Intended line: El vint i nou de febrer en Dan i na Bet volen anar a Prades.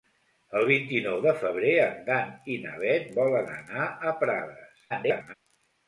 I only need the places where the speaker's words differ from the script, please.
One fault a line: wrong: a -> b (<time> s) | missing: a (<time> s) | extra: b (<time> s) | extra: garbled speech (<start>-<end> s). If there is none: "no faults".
extra: garbled speech (4.9-5.3 s)